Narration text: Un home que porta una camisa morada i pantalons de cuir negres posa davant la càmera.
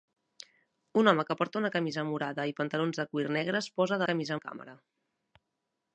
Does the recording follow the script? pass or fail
fail